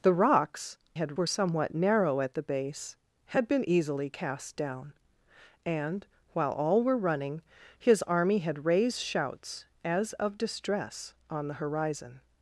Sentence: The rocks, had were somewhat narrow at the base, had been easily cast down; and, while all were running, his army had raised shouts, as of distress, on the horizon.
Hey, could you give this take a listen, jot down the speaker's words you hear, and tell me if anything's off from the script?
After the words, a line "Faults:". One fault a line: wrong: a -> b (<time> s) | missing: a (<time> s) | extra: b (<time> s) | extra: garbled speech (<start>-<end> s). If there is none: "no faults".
The rocks, had were somewhat narrow at the base, had been easily cast down; and, while all were running, his army had raised shouts, as of distress, on the horizon.
Faults:
no faults